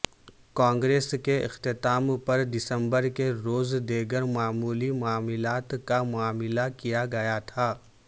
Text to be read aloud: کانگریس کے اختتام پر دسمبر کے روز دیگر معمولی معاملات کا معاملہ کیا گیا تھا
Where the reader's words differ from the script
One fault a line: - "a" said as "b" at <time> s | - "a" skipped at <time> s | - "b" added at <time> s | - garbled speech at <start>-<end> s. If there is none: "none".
none